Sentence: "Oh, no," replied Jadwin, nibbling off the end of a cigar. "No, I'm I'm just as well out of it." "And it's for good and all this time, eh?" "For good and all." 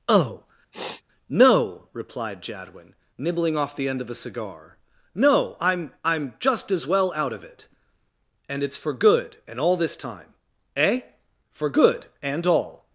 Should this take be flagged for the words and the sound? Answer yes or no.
yes